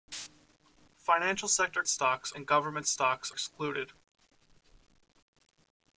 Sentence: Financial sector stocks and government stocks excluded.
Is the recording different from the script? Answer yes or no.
no